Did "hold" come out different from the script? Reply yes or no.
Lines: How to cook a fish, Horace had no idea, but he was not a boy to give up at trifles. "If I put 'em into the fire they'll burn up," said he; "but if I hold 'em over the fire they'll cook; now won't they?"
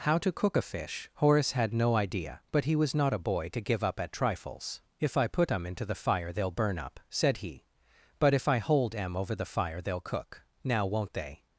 no